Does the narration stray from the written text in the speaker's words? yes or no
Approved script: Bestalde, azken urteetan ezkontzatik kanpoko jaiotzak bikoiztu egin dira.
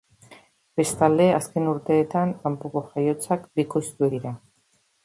yes